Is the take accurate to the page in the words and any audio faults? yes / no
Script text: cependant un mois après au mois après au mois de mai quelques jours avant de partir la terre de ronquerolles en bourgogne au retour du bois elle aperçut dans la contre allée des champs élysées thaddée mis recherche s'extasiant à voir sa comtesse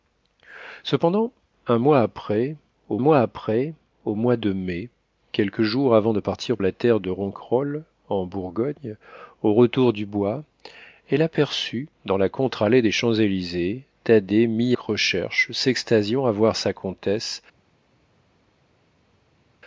yes